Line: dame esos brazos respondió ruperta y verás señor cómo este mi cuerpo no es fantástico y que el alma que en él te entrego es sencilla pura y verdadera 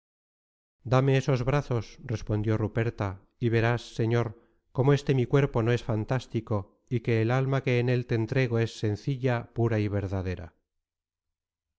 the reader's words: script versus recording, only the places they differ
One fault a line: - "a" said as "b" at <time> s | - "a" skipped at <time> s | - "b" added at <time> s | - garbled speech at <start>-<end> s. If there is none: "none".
none